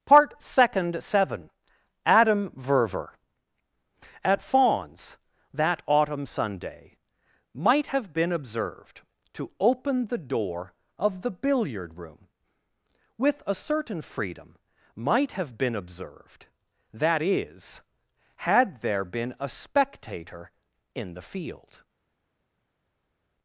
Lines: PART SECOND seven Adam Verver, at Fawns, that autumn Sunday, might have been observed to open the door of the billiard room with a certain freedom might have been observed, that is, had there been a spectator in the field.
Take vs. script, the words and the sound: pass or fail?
pass